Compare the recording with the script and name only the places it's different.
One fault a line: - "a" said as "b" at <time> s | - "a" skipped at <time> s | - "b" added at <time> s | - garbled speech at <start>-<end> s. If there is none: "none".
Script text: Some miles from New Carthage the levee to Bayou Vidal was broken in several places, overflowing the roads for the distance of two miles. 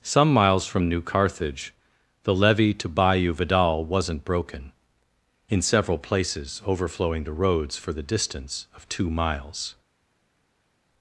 - "was" said as "wasn't" at 3.8 s